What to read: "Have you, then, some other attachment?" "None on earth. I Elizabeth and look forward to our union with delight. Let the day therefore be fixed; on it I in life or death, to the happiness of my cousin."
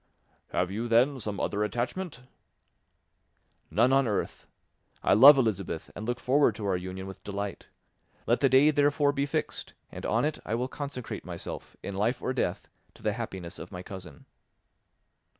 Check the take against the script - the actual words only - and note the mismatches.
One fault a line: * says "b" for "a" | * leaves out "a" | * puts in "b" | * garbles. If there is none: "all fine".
* puts in "love"
* puts in "and"
* puts in "will consecrate myself"